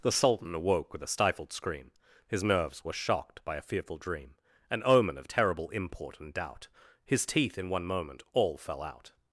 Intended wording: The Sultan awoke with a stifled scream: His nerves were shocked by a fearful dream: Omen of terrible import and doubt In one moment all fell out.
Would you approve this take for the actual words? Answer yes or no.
no